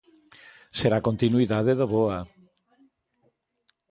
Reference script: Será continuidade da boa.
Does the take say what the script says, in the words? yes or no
yes